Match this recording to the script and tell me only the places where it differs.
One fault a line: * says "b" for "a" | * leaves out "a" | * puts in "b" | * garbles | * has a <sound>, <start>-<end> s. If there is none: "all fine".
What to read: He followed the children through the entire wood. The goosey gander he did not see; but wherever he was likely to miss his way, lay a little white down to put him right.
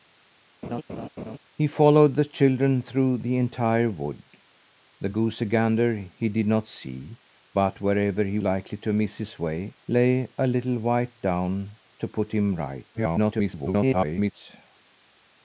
* has a laugh, 0.6-1.4 s
* leaves out "was"
* garbles